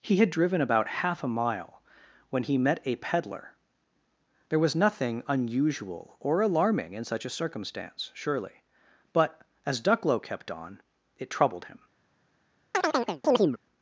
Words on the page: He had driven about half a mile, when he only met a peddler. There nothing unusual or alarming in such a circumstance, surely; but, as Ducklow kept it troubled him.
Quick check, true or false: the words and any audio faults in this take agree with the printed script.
false